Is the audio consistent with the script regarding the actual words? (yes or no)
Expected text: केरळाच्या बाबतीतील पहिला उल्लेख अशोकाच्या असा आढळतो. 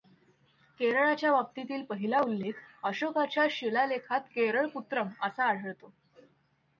no